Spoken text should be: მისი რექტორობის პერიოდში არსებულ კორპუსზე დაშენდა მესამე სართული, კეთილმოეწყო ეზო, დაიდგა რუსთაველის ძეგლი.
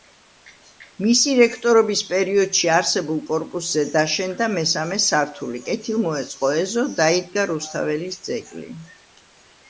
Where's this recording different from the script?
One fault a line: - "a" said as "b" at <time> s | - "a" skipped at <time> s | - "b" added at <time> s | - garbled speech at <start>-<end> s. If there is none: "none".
none